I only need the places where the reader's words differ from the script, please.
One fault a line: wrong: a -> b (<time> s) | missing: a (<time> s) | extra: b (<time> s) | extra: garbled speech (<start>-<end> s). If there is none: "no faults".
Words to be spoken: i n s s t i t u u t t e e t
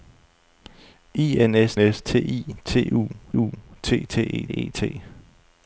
no faults